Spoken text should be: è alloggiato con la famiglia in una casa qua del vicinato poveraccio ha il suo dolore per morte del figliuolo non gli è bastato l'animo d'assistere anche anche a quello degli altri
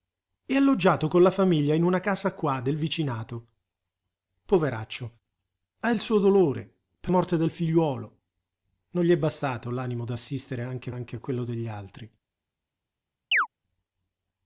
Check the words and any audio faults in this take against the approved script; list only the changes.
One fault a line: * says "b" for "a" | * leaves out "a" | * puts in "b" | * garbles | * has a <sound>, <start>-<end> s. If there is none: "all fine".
* has a chirp, 13.3-13.5 s